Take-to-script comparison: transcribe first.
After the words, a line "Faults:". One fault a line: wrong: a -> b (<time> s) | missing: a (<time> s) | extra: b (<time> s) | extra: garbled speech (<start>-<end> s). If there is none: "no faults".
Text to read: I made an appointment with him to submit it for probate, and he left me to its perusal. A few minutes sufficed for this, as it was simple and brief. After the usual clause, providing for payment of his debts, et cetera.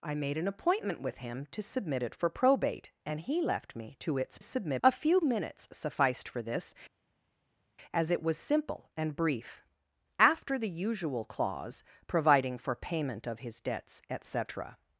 I made an appointment with him to submit it for probate, and he left me to its submit. A few minutes sufficed for this, as it was simple and brief. After the usual clause, providing for payment of his debts, et cetera.
Faults:
wrong: perusal -> submit (4.4 s)